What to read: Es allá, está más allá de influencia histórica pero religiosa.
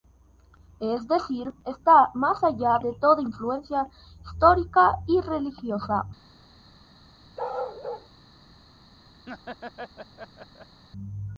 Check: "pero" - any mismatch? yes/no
yes